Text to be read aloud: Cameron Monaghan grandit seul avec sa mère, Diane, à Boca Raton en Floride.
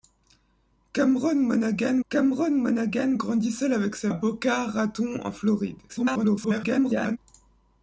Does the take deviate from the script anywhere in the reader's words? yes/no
yes